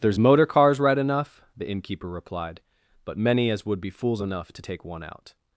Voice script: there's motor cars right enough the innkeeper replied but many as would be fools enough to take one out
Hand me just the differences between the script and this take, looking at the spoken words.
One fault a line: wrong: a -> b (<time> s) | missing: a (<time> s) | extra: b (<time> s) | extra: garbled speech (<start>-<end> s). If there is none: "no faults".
no faults